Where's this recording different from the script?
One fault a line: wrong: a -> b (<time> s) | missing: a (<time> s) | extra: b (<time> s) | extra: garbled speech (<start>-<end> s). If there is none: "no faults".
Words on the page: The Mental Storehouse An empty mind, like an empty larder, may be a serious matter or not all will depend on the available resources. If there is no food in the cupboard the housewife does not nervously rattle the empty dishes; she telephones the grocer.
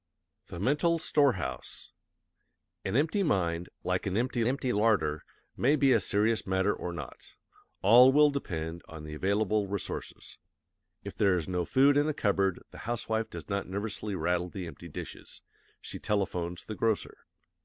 extra: empty (4.5 s)